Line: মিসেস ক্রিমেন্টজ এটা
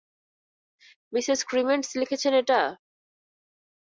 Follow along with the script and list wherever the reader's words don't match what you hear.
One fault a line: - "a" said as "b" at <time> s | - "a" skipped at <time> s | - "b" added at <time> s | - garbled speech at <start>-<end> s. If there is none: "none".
- "লিখেছেন" added at 2.0 s